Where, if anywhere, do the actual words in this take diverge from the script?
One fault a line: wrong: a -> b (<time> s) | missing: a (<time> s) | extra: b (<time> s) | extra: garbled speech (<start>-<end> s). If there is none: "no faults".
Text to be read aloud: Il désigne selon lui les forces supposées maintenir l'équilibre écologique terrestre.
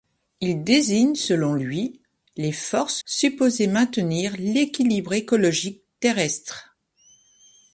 no faults